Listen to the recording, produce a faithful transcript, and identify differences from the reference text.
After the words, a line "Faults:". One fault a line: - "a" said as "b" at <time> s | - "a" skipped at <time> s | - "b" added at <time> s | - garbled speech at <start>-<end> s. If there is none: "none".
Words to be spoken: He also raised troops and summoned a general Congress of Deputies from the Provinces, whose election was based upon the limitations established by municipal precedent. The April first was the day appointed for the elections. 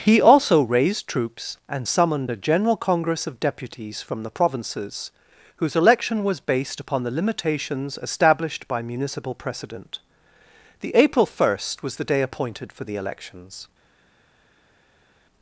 He also raised troops and summoned a general Congress of Deputies from the Provinces, whose election was based upon the limitations established by municipal precedent. The April first was the day appointed for the elections.
Faults:
none